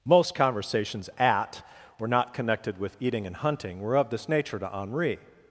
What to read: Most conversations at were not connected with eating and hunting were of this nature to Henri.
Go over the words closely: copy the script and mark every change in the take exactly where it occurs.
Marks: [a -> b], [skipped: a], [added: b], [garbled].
Most conversations at were not connected with eating and hunting were of this nature to Henri.